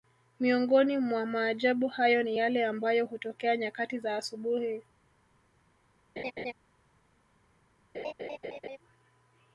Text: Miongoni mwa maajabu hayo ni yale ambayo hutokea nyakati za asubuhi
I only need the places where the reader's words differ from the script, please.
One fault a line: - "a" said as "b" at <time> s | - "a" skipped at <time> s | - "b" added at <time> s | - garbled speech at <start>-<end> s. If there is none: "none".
none